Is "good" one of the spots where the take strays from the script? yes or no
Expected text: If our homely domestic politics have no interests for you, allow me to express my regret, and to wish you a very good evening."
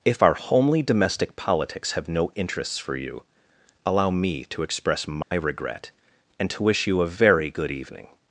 no